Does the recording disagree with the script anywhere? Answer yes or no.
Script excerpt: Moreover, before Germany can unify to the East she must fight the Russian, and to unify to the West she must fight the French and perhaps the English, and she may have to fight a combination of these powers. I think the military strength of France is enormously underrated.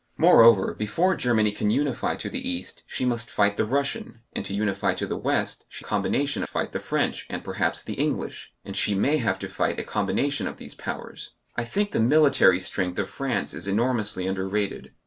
yes